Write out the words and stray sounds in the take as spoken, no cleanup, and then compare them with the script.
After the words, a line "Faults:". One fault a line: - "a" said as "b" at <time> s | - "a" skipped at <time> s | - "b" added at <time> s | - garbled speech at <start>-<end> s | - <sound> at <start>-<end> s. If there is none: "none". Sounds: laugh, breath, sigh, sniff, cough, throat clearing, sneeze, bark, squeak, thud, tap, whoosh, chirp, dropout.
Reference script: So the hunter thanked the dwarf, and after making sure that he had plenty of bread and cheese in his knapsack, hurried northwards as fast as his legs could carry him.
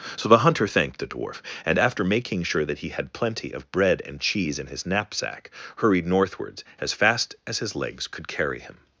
So the hunter thanked the dwarf, and after making sure that he had plenty of bread and cheese in his knapsack, hurried northwards as fast as his legs could carry him.
Faults:
none